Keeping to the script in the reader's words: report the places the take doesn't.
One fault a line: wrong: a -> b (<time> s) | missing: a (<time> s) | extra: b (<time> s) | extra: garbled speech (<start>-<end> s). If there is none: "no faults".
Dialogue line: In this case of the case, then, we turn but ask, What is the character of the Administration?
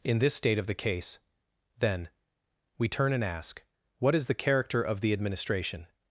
wrong: case -> state (0.3 s)
wrong: but -> and (3.1 s)